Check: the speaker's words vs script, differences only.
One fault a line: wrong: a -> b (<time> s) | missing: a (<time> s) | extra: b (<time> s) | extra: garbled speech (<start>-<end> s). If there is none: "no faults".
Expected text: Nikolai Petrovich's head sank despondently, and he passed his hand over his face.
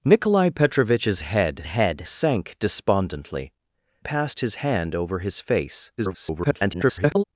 extra: head (1.6 s)
missing: and he (3.5 s)
extra: garbled speech (6.0-7.2 s)